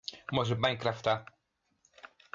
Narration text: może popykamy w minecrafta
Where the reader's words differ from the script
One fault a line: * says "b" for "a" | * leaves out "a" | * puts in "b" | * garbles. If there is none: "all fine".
* leaves out "popykamy"